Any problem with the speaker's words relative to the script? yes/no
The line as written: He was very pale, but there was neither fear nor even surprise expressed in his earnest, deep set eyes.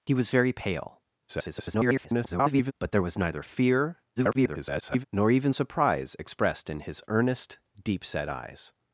yes